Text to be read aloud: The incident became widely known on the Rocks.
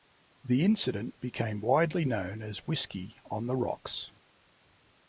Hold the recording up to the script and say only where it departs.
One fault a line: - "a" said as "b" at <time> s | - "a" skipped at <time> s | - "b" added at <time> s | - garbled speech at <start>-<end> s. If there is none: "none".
- "as Whiskey" added at 2.4 s